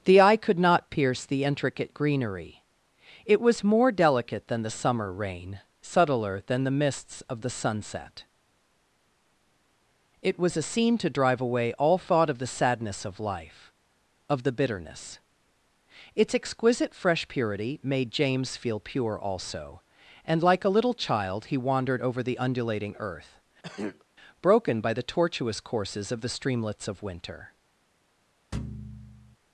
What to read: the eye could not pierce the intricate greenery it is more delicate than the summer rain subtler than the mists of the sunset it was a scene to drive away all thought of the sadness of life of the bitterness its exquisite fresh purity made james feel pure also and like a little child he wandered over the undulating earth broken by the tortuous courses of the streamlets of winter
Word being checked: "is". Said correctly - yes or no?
no